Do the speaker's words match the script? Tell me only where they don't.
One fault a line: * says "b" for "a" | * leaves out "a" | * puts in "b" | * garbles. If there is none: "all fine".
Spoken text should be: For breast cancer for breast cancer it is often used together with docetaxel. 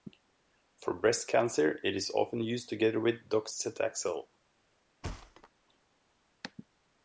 * leaves out "for breast cancer"